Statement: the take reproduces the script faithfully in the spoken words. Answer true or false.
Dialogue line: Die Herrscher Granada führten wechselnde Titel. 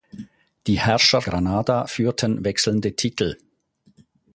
true